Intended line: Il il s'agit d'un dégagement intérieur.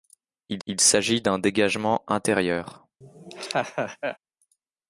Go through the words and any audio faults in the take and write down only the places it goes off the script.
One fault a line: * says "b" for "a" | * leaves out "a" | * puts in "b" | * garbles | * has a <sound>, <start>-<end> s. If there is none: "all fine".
* has a laugh, 3.0-4.2 s